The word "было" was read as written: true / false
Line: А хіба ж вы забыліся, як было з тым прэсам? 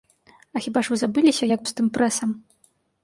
false